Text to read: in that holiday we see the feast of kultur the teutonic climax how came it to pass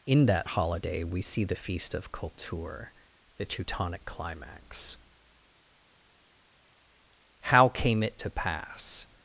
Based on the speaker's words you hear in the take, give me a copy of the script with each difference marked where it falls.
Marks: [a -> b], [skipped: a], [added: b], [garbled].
in that holiday we see the feast of kultur the teutonic climax how came it to pass